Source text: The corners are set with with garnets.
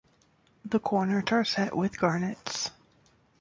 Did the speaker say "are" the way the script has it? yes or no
yes